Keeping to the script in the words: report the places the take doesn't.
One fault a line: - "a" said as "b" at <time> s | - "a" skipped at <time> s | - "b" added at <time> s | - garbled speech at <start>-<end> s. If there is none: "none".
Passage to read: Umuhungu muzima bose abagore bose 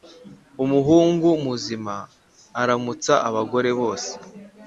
- "bose" said as "aramutsa" at 2.6 s